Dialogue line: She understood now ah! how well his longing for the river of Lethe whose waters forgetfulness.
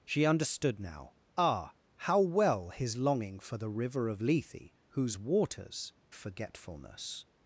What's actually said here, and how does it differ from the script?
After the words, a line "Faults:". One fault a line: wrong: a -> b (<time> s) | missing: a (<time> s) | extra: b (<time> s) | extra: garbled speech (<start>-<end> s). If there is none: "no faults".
She understood now ah! how well his longing for the river of Lethe whose waters forgetfulness.
Faults:
no faults